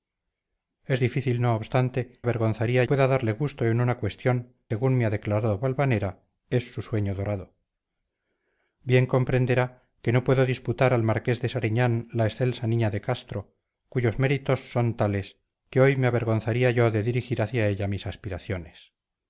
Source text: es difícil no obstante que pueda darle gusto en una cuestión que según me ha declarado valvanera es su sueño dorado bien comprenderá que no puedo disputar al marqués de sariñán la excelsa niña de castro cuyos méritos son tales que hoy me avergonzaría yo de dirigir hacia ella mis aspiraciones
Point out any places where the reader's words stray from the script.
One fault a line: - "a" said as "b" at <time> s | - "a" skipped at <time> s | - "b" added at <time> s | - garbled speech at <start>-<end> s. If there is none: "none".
- "que" said as "avergonzaría" at 2.2 s
- "que" skipped at 4.6 s